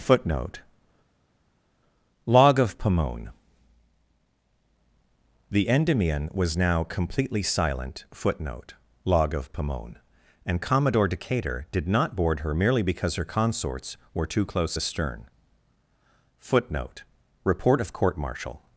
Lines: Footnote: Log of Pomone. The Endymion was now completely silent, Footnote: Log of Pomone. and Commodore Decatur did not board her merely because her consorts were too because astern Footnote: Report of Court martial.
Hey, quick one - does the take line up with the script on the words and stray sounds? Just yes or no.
no